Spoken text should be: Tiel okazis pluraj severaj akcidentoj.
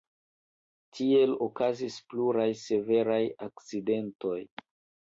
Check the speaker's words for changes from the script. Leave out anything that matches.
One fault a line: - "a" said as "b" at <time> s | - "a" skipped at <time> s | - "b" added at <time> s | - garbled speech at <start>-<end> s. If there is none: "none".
none